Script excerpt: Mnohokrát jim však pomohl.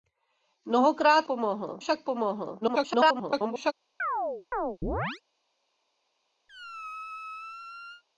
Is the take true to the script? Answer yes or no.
no